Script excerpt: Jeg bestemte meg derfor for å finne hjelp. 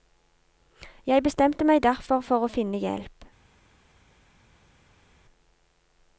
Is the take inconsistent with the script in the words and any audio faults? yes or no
no